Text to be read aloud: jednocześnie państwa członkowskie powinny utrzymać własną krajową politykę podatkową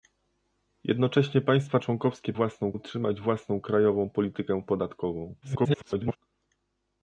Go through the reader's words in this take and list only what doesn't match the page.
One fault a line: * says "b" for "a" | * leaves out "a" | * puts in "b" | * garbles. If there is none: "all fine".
* says "własną" for "powinny"
* garbles